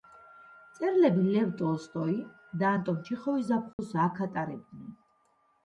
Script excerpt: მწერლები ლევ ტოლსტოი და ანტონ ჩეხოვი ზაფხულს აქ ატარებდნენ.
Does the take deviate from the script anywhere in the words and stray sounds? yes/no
yes